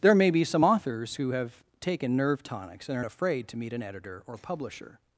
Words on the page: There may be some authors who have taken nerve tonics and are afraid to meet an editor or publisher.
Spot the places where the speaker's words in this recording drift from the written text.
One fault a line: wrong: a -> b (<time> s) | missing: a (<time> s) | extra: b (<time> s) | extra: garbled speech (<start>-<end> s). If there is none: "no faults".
no faults